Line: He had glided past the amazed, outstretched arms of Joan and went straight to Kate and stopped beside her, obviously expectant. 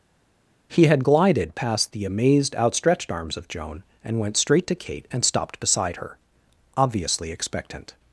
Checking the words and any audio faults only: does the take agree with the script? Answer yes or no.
yes